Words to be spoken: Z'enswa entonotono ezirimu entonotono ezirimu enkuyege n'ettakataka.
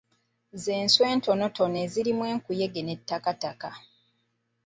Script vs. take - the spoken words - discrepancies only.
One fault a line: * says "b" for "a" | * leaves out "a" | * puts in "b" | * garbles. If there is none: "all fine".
* leaves out "entonotono ezirimu"